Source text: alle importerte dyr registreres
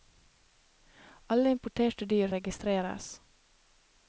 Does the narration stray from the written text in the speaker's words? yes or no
no